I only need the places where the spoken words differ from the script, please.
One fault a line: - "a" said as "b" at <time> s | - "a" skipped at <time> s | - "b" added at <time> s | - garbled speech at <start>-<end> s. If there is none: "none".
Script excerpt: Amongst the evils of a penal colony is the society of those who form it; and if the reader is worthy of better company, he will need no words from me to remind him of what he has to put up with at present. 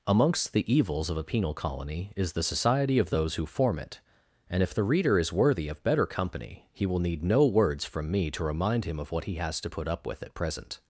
none